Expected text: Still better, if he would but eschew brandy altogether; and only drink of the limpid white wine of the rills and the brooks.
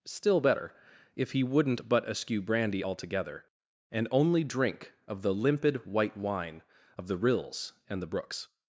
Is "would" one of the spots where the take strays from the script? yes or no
yes